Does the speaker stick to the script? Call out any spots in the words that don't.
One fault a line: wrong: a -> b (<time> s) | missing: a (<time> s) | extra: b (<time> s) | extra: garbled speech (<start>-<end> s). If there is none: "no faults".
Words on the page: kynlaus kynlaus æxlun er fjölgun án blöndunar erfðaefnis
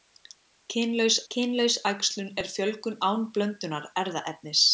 no faults